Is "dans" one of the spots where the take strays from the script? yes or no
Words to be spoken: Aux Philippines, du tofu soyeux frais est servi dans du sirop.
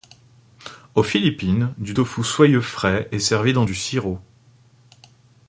no